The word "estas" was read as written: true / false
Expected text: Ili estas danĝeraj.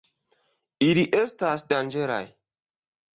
true